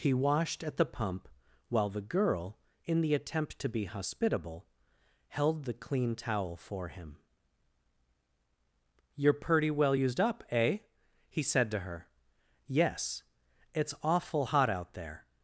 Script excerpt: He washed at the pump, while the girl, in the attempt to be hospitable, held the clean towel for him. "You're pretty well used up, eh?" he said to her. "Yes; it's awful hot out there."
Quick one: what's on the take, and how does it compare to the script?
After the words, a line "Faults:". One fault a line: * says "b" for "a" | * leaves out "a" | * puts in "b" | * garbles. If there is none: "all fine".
He washed at the pump, while the girl, in the attempt to be hospitable, held the clean towel for him. "You're pretty well used up, eh?" he said to her. "Yes; it's awful hot out there."
Faults:
all fine